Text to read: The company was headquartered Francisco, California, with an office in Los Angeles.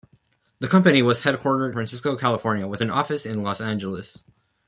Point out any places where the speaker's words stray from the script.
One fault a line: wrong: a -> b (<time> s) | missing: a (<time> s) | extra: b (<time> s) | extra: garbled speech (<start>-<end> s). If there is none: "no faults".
no faults